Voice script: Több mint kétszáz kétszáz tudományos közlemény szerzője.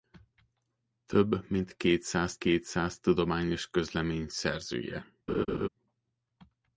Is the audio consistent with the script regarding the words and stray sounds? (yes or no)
no